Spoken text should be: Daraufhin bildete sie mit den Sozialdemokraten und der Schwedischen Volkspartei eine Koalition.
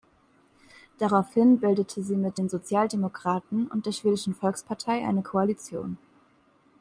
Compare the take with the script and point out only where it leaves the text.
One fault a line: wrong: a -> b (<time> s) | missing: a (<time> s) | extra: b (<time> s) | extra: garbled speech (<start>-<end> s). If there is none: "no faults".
no faults